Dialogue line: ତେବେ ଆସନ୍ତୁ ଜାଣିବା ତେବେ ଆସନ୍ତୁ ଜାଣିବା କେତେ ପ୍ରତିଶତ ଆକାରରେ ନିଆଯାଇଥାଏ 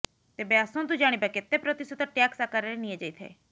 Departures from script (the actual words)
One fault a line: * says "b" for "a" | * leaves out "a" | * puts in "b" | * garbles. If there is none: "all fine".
* leaves out "ତେବେ ଆସନ୍ତୁ ଜାଣିବା"
* puts in "ଟ୍ୟାକ୍ସ"